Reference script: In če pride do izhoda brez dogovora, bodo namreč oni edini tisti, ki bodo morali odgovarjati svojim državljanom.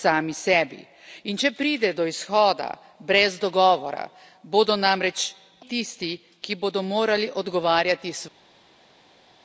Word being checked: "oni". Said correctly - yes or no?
no